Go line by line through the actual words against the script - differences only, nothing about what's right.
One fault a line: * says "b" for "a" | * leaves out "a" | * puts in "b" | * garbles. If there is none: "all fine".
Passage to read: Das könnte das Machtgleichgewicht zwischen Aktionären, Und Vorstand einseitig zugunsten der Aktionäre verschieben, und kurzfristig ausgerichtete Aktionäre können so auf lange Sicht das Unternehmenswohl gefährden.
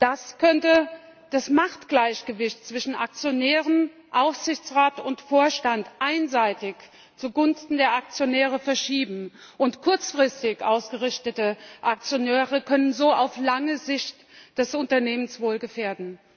* puts in "Aufsichtsrat"